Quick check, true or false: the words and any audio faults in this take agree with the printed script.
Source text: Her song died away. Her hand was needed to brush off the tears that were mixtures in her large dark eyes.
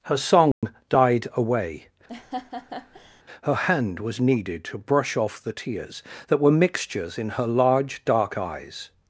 false